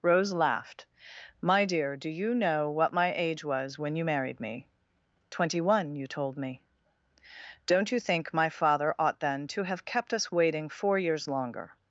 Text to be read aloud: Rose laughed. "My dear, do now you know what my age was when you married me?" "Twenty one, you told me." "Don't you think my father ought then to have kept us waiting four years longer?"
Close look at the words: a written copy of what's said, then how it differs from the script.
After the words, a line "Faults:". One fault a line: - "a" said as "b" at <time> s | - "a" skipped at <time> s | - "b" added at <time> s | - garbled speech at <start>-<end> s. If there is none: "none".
Rose laughed. "My dear, do you know what my age was when you married me?" "Twenty one, you told me." "Don't you think my father ought then to have kept us waiting four years longer?"
Faults:
- "now" skipped at 2.1 s